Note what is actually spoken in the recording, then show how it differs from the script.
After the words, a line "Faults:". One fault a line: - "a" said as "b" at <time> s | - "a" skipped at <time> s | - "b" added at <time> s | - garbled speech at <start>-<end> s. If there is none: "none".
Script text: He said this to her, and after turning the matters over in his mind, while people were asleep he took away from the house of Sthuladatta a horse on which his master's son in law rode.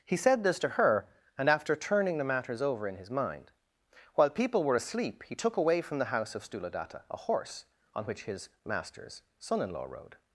He said this to her, and after turning the matters over in his mind, while people were asleep he took away from the house of Sthuladatta a horse on which his master's son in law rode.
Faults:
none